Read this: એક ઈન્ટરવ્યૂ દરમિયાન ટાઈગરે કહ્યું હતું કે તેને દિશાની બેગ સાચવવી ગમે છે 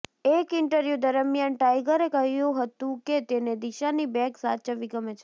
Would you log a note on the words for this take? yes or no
no